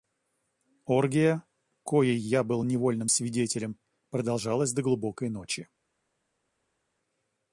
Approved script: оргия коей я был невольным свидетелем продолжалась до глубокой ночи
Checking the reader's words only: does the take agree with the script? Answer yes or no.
yes